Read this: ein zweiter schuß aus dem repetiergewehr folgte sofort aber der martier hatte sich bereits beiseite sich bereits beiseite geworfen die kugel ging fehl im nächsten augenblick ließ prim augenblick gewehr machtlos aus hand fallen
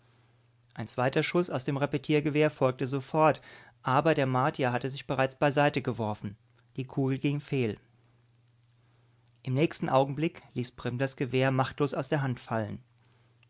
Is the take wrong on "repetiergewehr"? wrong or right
right